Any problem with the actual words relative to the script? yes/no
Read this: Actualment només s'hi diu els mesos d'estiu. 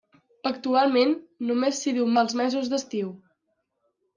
no